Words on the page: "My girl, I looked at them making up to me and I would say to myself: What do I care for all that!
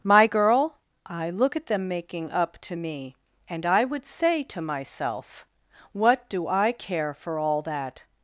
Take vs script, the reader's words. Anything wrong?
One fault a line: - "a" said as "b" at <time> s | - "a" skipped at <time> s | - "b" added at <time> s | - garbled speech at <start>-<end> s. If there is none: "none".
- "looked" said as "look" at 1.3 s